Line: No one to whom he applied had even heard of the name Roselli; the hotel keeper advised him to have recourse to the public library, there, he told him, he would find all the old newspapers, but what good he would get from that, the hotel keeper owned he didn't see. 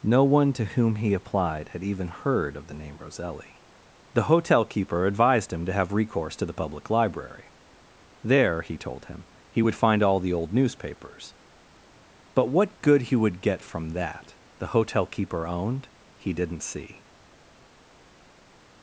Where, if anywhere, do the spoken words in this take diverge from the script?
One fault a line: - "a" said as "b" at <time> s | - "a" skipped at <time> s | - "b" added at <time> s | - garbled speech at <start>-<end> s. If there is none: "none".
none